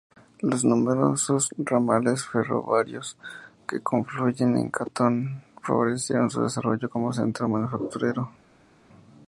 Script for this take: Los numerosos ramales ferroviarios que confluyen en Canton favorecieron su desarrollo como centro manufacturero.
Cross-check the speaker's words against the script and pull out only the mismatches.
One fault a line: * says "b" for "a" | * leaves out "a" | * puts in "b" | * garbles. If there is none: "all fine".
all fine